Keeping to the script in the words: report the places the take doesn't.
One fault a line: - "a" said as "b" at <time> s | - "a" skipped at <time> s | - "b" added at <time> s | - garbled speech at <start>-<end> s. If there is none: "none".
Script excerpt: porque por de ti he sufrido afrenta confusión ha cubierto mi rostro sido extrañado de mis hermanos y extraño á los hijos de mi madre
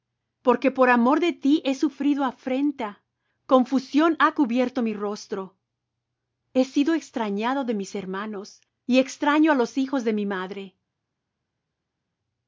- "amor" added at 0.9 s
- "he" added at 6.5 s